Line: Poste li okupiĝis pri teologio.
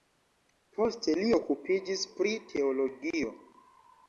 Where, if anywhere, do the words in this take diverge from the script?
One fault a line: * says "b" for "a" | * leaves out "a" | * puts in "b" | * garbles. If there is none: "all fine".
all fine